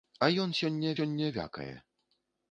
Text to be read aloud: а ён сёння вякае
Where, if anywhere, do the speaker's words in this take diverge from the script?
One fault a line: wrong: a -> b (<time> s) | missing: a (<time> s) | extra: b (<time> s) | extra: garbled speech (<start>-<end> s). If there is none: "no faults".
extra: сёння (1.0 s)